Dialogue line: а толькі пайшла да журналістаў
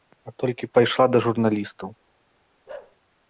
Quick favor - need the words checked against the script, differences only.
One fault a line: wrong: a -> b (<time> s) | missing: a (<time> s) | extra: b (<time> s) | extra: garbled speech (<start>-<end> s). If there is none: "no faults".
no faults